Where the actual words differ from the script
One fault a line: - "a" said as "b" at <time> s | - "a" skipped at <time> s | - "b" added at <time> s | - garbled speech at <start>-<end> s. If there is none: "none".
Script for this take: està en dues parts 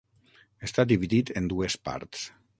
- "dividit" added at 0.9 s